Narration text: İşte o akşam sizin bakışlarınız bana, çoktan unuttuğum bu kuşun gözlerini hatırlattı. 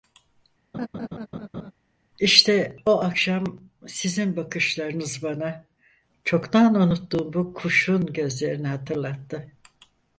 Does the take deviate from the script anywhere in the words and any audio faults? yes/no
yes